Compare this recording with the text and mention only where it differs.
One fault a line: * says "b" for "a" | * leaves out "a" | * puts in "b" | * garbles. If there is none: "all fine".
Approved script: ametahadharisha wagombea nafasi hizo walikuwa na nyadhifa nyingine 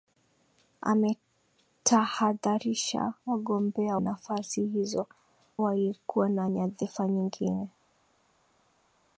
all fine